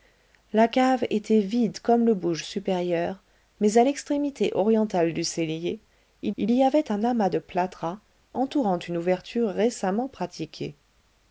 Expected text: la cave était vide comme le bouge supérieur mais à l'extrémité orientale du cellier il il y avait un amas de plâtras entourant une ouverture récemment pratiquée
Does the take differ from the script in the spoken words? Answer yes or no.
no